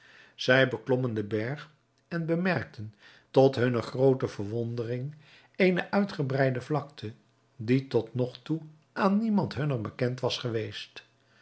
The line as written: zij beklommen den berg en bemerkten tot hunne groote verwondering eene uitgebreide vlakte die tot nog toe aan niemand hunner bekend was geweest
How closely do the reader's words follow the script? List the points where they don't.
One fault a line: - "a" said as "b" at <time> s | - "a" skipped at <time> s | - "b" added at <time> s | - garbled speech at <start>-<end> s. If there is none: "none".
none